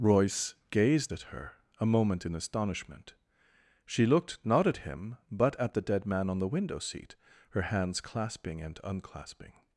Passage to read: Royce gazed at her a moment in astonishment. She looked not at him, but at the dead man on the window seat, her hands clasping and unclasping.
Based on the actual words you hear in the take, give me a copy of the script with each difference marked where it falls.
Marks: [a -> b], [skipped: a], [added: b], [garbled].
Royce gazed at her a moment in astonishment. She looked not at him, but at the dead man on the window seat, her hands clasping and unclasping.